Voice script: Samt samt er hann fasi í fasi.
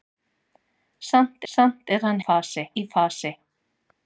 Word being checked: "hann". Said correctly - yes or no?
yes